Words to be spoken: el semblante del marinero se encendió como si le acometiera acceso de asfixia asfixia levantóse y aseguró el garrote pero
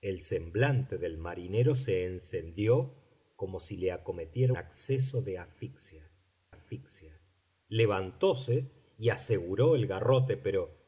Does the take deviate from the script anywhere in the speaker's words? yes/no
no